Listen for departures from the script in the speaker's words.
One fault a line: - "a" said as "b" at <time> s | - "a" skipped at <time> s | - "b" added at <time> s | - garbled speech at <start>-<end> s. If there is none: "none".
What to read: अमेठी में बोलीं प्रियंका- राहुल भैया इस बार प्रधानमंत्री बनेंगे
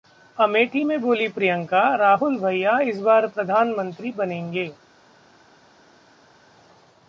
none